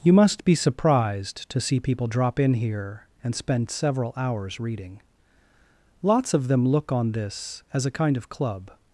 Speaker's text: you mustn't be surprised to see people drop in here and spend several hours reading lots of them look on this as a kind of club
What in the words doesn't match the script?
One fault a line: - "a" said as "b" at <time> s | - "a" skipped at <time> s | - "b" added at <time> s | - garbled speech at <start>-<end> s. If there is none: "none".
- "mustn't" said as "must" at 0.1 s